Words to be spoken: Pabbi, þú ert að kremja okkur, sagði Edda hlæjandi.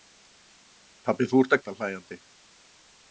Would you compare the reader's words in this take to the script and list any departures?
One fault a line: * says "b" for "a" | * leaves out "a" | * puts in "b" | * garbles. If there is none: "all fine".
* leaves out "kremja okkur sagði"